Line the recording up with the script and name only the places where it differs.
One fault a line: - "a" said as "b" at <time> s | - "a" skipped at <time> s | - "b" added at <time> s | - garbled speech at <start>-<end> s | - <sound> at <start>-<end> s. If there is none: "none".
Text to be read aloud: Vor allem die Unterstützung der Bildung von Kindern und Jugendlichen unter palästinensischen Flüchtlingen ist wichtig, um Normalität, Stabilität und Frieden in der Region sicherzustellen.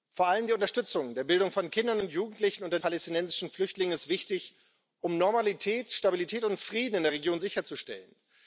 none